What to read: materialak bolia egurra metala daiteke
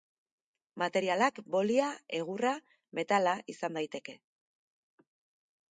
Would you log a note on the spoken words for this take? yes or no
yes